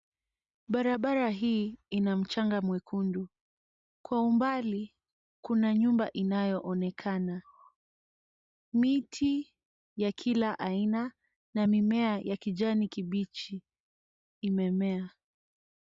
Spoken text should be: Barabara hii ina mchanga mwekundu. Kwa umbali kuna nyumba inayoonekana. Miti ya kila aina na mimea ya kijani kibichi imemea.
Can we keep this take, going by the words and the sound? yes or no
yes